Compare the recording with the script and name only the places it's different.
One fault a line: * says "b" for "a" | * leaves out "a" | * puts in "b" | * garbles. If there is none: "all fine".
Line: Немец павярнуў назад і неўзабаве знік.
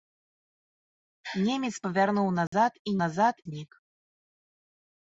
* says "назад" for "неўзабаве"